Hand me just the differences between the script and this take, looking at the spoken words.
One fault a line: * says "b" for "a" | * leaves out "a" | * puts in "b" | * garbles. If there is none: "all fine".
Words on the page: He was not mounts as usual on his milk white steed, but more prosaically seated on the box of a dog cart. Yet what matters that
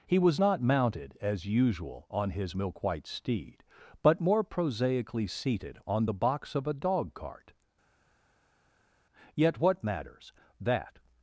* says "mounted" for "mounts"